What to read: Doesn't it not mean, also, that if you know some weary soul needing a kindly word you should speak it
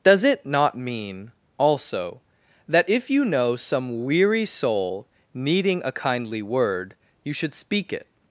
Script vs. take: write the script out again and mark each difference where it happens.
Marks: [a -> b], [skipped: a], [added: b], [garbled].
[Doesn't -> Does] it not mean, also, that if you know some weary soul needing a kindly word you should speak it